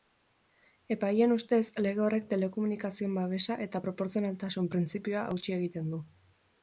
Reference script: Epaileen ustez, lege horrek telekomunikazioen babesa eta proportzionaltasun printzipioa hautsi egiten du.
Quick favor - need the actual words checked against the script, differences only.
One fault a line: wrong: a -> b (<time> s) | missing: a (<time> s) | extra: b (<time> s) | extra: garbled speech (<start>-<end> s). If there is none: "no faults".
no faults